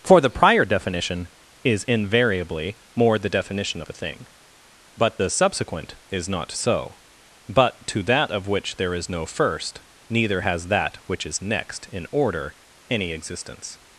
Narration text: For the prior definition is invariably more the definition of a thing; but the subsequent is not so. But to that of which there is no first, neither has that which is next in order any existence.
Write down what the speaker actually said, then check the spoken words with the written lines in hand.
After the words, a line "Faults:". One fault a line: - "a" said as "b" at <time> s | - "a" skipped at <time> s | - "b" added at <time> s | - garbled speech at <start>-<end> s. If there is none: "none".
For the prior definition is invariably more the definition of a thing; but the subsequent is not so. But to that of which there is no first, neither has that which is next in order any existence.
Faults:
none